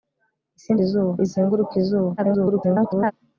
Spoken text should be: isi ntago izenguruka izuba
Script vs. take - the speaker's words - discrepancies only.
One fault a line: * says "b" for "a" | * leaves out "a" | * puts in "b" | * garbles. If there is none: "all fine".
* says "izuba" for "ntago"
* garbles